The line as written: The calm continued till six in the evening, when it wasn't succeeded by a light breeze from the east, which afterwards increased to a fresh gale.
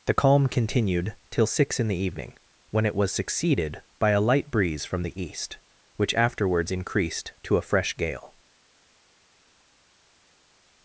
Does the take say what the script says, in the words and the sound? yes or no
no